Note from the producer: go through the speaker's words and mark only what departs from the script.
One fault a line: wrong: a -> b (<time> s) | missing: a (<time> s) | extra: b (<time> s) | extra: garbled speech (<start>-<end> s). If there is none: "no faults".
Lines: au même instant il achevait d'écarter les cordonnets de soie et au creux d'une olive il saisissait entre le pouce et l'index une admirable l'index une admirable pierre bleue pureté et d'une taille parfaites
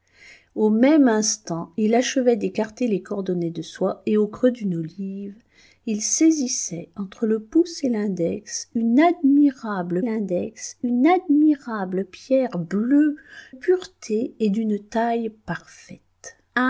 no faults